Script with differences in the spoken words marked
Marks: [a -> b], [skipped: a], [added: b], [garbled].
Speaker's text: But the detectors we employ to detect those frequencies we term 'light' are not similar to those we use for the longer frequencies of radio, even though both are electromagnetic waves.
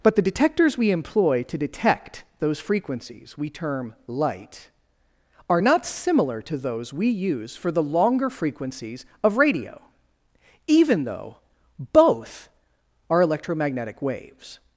But the detectors we employ to detect those frequencies we term 'light' are not similar to those we use for the longer frequencies of radio, even though both are electromagnetic waves.